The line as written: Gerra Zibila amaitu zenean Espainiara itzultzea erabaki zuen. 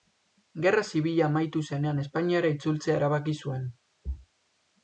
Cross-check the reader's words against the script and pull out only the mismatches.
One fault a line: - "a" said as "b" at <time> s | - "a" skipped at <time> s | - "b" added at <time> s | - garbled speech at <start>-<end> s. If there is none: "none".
none